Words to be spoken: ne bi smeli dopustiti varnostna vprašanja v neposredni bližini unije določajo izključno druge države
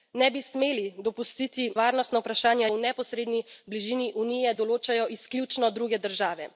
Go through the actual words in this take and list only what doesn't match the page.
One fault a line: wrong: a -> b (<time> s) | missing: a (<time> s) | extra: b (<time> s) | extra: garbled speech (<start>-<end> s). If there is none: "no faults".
no faults